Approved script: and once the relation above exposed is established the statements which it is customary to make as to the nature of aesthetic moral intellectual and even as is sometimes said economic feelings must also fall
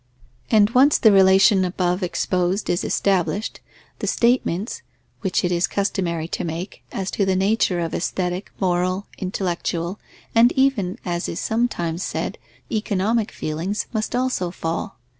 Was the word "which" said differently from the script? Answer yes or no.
no